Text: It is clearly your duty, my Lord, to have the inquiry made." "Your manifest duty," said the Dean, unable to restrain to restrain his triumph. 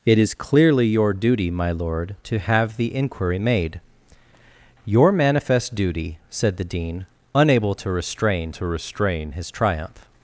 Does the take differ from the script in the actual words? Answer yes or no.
no